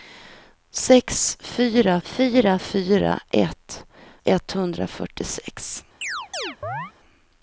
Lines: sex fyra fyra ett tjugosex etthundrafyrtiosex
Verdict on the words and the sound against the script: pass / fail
fail